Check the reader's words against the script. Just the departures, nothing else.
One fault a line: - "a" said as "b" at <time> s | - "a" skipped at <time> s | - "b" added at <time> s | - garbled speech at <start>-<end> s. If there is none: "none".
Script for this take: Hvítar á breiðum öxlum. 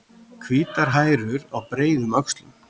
- "hærur" added at 1.0 s